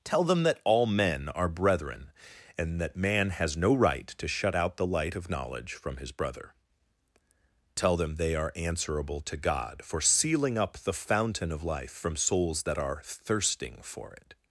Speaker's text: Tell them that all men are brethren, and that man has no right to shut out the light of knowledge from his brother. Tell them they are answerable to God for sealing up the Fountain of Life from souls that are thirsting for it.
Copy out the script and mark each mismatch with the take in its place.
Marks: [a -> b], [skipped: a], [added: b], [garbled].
Tell them that all men are brethren, and that man has no right to shut out the light of knowledge from his brother. Tell them they are answerable to God for sealing up the Fountain of Life from souls that are thirsting for it.